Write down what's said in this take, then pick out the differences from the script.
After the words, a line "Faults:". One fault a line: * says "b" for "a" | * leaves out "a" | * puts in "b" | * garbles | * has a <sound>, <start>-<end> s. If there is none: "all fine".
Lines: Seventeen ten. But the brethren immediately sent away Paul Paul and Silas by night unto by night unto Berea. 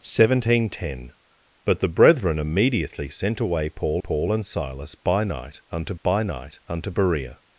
Seventeen ten. But the brethren immediately sent away Paul Paul and Silas by night unto by night unto Berea.
Faults:
all fine